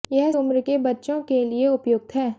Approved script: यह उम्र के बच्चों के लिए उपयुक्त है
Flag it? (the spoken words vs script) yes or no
no